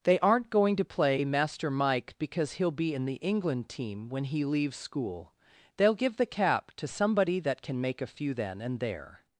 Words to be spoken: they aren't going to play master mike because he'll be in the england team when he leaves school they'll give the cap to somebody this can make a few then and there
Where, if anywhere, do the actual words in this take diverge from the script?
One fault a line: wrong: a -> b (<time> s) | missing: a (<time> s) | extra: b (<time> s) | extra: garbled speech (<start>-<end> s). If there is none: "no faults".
wrong: this -> that (7.4 s)